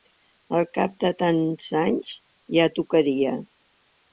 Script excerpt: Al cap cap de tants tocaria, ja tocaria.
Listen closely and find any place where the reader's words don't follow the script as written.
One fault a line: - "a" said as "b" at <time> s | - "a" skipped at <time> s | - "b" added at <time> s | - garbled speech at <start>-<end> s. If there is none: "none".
- "cap" skipped at 0.9 s
- "tocaria" said as "anys" at 1.8 s